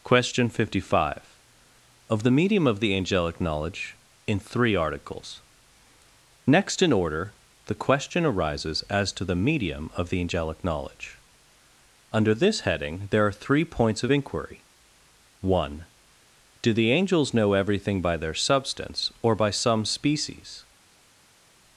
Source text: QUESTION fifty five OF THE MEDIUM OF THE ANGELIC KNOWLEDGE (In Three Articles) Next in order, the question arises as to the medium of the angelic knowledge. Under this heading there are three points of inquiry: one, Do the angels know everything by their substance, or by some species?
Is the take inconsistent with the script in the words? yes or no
no